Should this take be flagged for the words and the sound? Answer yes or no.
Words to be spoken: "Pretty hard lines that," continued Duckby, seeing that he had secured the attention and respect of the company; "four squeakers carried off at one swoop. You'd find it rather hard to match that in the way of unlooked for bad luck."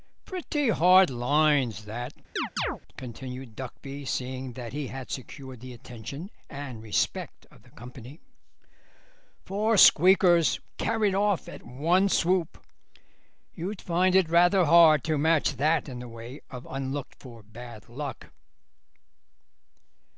yes